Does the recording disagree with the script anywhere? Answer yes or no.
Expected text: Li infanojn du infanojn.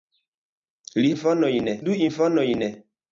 no